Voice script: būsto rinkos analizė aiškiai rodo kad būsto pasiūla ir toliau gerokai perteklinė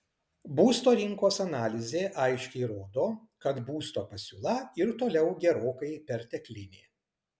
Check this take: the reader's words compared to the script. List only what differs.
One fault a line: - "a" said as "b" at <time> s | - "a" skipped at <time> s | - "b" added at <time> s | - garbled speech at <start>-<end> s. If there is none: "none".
none